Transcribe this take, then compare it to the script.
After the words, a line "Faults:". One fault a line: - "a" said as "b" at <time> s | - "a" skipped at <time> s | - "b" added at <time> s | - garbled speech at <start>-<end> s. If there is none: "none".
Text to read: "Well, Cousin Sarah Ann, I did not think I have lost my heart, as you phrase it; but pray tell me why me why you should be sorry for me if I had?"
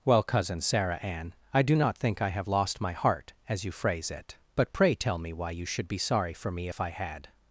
"Well, Cousin Sarah Ann, I do not think I have lost my heart, as you phrase it; but pray tell me why you should be sorry for me if I had?"
Faults:
- "did" said as "do" at 1.6 s
- "me why" skipped at 5.5 s